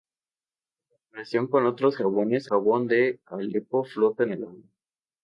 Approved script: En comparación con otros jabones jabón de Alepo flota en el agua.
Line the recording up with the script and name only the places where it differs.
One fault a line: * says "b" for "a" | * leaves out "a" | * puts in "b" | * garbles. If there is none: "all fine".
all fine